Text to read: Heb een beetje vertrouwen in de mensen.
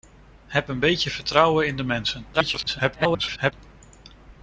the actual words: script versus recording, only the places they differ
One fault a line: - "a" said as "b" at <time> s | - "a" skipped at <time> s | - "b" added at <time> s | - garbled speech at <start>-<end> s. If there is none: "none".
- garbled speech at 2.3-3.5 s